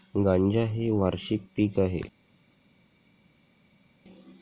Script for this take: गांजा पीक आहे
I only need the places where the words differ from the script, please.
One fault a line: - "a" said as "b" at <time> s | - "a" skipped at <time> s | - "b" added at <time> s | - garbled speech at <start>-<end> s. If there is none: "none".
- "हे वार्षिक" added at 0.7 s